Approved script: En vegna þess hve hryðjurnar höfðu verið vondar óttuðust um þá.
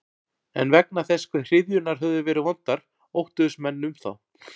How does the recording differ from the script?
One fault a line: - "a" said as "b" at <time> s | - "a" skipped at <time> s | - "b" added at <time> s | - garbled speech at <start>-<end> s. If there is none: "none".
- "menn" added at 3.7 s